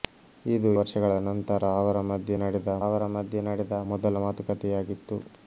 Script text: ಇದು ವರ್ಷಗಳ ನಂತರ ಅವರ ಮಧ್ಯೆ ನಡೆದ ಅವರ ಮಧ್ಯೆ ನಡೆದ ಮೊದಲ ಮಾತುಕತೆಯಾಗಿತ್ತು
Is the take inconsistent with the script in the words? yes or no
no